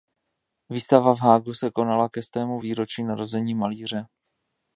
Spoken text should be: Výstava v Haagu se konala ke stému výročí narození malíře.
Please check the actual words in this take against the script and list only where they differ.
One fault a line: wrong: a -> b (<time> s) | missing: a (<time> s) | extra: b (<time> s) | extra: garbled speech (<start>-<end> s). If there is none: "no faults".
no faults